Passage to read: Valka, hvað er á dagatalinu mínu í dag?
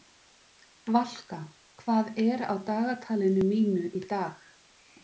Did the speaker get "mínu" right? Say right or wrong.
right